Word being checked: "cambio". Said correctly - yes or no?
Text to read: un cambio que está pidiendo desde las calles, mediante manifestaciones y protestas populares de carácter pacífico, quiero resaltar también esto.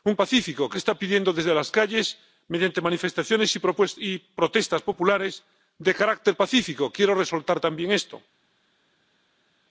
no